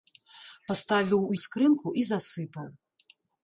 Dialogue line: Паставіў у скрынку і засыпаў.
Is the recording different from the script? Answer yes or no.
no